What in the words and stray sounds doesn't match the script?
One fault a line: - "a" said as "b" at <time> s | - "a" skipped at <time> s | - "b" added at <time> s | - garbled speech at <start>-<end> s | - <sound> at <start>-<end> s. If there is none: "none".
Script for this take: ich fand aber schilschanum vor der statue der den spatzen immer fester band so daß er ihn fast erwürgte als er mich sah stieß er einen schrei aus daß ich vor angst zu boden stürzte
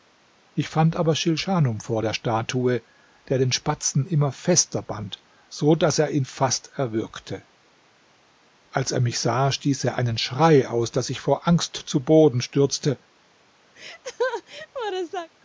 - laugh at 13.7-15.3 s